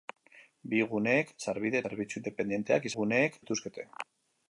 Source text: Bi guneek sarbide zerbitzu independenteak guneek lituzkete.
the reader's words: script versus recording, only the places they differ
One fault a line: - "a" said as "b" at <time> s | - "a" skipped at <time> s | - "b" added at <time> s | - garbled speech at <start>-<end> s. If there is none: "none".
none